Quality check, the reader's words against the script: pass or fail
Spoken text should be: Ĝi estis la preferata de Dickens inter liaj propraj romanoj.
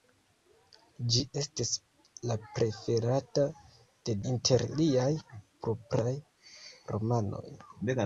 fail